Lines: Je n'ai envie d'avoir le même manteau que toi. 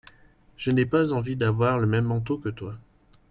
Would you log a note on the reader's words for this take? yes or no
yes